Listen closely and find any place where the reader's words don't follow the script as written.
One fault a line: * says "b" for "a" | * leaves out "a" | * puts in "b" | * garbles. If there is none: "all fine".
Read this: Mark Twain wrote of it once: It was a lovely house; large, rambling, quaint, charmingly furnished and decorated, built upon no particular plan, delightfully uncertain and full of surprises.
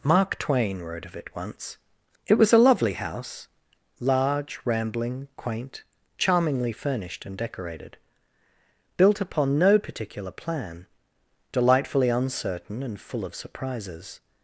all fine